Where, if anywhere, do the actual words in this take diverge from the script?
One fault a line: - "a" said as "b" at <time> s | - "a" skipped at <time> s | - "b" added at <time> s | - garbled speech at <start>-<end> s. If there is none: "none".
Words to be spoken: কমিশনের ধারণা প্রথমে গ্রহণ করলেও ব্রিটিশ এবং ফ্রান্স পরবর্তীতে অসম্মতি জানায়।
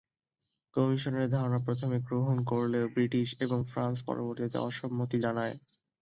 none